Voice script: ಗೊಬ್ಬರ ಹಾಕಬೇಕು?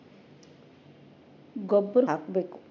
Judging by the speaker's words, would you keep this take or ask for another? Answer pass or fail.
pass